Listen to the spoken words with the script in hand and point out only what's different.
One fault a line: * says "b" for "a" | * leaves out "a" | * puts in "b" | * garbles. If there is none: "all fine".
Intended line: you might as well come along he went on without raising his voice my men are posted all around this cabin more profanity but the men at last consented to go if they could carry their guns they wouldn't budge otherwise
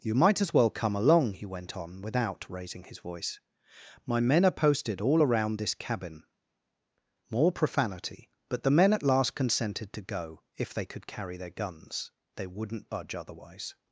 all fine